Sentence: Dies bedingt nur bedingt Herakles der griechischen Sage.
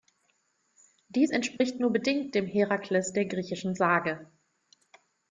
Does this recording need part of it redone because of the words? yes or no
yes